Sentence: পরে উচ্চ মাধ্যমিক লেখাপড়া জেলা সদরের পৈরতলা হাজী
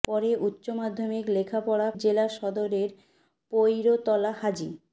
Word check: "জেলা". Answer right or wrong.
right